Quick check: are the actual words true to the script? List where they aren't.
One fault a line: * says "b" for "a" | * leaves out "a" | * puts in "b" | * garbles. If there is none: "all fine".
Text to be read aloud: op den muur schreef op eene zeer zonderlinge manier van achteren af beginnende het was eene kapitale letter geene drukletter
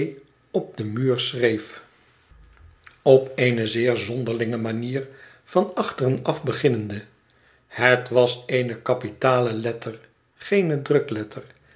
all fine